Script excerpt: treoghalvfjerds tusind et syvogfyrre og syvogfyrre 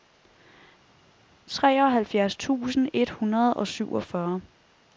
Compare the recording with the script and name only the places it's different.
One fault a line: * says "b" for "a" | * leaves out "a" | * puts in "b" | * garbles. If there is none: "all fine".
* says "hundrede" for "syvogfyrre"